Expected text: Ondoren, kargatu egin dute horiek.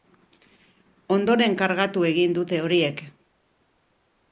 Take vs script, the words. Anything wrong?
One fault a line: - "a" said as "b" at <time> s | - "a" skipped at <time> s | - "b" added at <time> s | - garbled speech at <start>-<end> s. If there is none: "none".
none